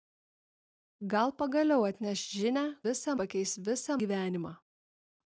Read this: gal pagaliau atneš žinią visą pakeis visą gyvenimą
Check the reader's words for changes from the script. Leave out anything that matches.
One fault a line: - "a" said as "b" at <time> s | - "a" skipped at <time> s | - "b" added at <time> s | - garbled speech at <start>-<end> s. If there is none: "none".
none